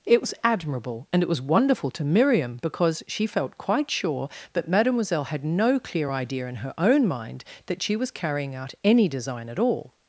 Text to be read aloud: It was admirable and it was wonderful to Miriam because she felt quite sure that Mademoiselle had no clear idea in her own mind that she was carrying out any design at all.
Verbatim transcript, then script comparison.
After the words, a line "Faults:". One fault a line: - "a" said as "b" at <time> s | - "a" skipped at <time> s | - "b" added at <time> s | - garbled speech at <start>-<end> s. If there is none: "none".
It was admirable and it was wonderful to Miriam because she felt quite sure that Mademoiselle had no clear idea in her own mind that she was carrying out any design at all.
Faults:
none